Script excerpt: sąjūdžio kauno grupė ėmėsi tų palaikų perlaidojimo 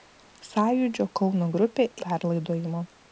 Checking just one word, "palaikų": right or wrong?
wrong